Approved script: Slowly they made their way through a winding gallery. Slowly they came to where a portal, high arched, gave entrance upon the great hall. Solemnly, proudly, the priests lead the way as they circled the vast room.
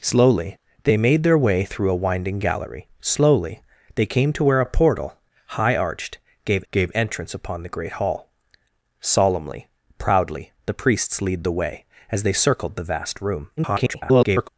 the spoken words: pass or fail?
fail